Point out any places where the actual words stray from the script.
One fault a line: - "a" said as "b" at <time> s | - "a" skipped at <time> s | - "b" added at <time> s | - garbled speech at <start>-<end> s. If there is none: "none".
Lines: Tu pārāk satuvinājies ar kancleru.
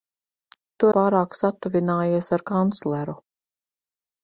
none